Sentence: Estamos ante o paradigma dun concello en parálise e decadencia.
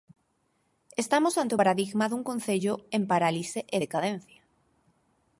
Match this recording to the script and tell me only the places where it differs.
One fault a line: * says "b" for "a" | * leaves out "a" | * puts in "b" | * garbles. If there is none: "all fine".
all fine